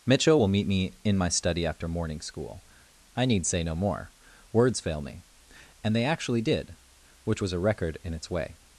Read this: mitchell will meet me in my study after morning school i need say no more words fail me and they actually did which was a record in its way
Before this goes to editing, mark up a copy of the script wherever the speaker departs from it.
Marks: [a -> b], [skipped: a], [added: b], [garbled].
mitchell will meet me in my study after morning school i need say no more words fail me and they actually did which was a record in its way